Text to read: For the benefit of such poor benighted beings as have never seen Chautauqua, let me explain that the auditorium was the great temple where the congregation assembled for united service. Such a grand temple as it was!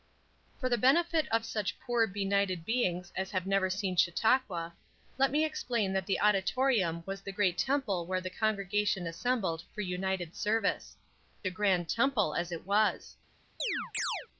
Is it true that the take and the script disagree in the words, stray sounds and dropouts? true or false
true